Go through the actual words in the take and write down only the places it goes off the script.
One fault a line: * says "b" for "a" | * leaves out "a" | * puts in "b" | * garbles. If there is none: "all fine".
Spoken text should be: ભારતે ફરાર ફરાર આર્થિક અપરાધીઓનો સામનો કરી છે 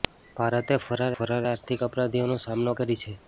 all fine